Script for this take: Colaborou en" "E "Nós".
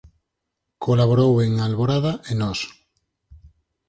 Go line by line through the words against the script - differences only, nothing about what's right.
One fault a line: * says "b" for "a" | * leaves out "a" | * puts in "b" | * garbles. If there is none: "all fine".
* puts in "Alborada"